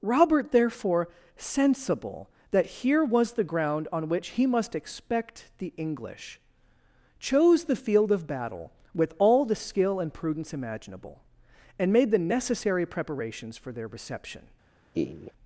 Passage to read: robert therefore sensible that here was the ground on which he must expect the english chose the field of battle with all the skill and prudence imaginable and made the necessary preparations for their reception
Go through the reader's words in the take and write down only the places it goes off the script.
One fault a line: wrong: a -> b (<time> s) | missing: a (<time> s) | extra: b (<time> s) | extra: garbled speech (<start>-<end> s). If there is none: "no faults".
no faults